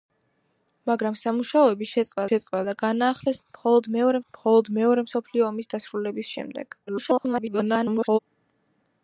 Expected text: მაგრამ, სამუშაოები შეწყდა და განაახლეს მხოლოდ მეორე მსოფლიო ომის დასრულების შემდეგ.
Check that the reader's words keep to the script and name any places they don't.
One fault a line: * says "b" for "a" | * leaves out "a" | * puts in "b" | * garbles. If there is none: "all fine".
* puts in "შეწყდა"
* puts in "მხოლოდ მეორე"
* garbles